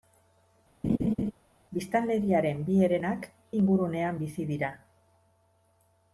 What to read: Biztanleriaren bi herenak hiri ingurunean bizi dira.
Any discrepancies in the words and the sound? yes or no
yes